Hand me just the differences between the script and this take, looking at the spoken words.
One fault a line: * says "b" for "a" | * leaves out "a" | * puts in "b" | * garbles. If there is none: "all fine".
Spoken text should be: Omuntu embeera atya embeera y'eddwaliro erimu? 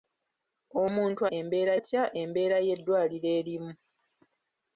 all fine